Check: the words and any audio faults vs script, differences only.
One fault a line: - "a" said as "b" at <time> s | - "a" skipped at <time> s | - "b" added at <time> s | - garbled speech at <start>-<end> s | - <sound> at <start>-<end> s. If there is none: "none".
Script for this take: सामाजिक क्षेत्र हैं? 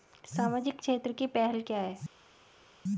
- "की पहल क्या" added at 1.1 s